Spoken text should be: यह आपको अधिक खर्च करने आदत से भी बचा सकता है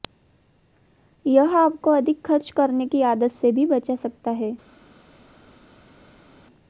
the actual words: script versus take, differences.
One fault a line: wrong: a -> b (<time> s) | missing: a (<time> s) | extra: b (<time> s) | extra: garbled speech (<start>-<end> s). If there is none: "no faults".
extra: की (2.9 s)